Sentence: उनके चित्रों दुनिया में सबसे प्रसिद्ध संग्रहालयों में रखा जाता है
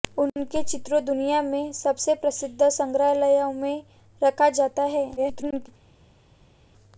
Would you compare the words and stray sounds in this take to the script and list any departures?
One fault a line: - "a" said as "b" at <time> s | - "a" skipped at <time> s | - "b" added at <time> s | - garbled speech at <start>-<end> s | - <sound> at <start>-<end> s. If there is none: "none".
- garbled speech at 5.2-5.7 s